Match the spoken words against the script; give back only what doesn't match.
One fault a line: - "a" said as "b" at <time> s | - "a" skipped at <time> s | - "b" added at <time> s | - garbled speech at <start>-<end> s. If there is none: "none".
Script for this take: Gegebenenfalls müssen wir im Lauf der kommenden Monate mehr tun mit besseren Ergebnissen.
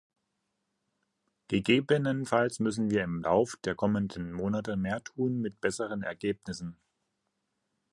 none